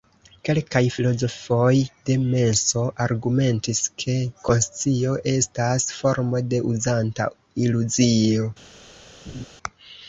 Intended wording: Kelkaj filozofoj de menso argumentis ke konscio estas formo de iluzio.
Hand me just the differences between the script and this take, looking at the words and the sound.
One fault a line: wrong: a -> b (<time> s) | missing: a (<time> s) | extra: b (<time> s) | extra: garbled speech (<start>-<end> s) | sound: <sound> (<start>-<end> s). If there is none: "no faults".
extra: uzanta (6.7 s)
sound: laugh (9.3-9.5 s)